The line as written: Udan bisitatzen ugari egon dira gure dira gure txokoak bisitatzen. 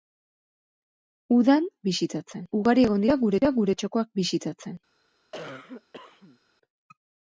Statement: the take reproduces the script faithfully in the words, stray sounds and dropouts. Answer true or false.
false